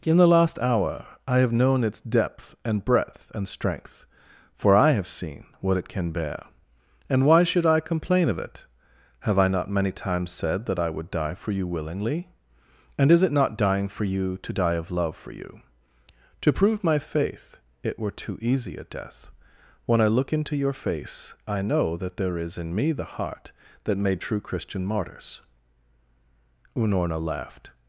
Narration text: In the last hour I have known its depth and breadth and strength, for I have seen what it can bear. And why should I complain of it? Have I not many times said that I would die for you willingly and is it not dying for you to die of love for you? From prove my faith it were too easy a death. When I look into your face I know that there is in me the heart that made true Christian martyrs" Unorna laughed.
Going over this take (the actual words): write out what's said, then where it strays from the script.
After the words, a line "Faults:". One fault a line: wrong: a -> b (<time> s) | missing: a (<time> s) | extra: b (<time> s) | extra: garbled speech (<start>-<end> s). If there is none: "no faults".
In the last hour I have known its depth and breadth and strength, for I have seen what it can bear. And why should I complain of it? Have I not many times said that I would die for you willingly and is it not dying for you to die of love for you? To prove my faith it were too easy a death. When I look into your face I know that there is in me the heart that made true Christian martyrs" Unorna laughed.
Faults:
wrong: From -> To (16.4 s)